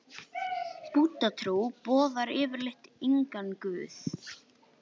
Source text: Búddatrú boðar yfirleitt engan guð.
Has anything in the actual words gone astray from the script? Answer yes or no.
no